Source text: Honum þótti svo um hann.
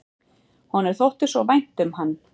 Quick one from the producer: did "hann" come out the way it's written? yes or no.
yes